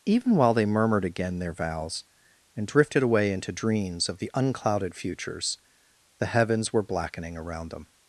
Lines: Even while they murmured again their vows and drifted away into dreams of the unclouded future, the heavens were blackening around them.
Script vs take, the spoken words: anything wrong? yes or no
yes